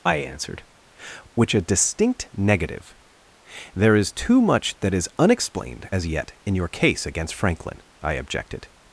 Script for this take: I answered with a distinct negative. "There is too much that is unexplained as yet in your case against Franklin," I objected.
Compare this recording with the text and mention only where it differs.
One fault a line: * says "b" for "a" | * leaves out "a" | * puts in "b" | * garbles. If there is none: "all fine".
* says "which" for "with"